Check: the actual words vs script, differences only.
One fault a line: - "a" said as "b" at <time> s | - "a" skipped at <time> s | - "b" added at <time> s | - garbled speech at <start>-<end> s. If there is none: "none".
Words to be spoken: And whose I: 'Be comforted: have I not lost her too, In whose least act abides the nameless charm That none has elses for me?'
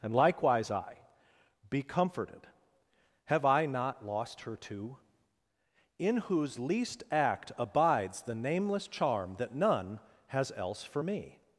- "whose" said as "likewise" at 0.1 s
- "elses" said as "else" at 10.6 s